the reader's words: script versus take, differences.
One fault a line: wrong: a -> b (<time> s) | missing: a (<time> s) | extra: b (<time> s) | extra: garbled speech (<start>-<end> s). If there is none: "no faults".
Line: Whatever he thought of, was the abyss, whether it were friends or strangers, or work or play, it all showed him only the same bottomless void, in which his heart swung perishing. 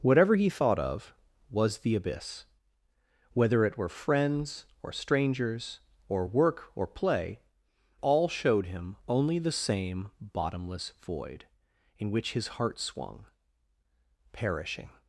missing: it (7.4 s)